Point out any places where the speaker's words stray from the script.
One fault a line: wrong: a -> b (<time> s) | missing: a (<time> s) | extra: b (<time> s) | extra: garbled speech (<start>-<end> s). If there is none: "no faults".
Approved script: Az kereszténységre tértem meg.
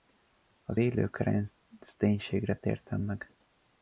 extra: élő (0.8 s)